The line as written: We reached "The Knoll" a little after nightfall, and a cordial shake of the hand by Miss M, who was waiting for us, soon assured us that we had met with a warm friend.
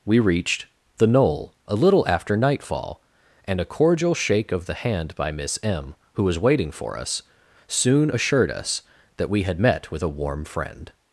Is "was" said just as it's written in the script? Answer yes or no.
yes